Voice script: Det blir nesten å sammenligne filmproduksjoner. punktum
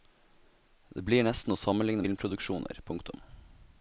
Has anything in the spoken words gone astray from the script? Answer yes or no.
no